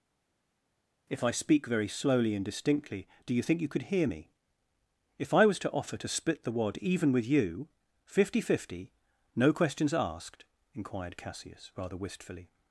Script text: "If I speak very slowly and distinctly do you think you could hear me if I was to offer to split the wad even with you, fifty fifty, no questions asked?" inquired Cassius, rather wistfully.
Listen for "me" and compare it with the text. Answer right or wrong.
right